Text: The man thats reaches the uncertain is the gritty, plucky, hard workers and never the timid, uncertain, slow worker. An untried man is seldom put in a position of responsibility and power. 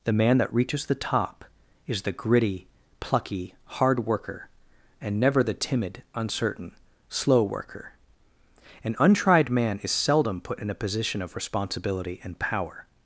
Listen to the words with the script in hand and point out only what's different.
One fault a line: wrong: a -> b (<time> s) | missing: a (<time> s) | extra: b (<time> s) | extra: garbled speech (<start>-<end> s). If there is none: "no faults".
wrong: thats -> that (0.4 s)
wrong: uncertain -> top (0.9 s)
wrong: workers -> worker (4.1 s)